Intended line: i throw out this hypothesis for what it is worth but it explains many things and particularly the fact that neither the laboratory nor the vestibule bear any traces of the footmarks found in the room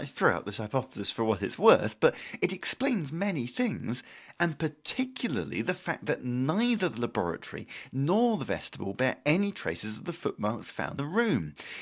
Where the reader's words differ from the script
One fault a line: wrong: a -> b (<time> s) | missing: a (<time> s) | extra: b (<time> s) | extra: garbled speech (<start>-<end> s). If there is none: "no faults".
missing: in (11.0 s)